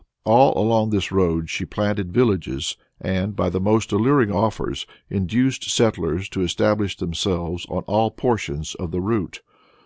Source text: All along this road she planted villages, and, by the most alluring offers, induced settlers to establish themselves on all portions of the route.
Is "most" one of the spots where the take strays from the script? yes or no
no